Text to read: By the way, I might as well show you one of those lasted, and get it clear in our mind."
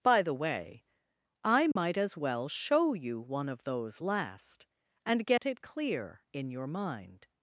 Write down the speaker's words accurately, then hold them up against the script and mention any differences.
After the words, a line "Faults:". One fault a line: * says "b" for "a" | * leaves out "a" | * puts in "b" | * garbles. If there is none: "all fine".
By the way, I might as well show you one of those last, and get it clear in your mind."
Faults:
* says "last" for "lasted"
* says "your" for "our"